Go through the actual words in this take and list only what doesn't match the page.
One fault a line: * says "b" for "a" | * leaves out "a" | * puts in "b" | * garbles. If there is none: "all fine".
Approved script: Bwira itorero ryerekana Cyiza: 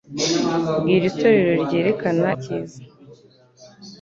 all fine